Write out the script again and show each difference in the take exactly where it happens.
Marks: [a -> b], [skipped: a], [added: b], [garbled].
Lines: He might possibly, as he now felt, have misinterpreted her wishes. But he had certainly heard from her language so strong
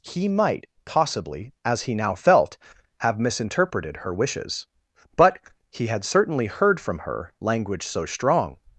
He might possibly, as he now felt, have misinterpreted her wishes. But he had certainly heard from her language so strong